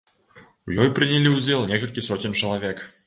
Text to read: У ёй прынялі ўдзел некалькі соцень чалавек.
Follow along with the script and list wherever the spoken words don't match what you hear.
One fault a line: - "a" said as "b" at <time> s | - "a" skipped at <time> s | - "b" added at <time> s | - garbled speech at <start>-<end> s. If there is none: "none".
none